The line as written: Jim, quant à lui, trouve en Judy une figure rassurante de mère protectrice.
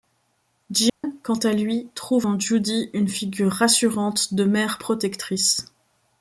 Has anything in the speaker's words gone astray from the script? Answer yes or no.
no